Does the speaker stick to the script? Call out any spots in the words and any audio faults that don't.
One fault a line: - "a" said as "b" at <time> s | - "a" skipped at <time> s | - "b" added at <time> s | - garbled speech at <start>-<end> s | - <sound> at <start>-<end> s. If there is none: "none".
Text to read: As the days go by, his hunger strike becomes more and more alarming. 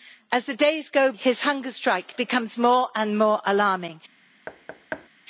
- "by" skipped at 1.1 s
- thud at 4.5-5.1 s